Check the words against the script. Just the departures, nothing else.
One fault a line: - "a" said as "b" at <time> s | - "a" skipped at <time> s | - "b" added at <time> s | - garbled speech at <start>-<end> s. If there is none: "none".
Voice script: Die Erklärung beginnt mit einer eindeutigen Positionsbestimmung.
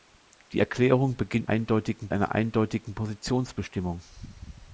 - "mit" said as "eindeutigen" at 1.5 s